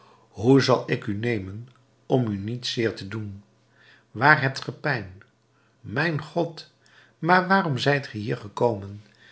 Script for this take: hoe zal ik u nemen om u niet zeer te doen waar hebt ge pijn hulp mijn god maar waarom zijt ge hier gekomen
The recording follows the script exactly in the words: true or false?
false